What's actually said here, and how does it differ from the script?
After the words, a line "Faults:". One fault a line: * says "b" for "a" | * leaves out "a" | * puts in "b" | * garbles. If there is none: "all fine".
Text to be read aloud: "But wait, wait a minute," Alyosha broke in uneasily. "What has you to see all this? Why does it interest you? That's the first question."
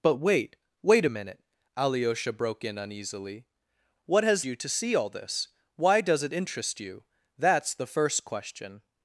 "But wait, wait a minute," Alyosha broke in uneasily. "What has you to see all this? Why does it interest you? That's the first question."
Faults:
all fine